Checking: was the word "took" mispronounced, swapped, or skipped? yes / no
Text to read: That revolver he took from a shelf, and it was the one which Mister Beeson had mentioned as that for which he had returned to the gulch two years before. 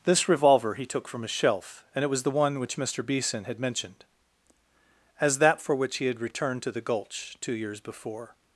no